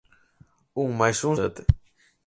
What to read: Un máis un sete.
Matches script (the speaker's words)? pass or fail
pass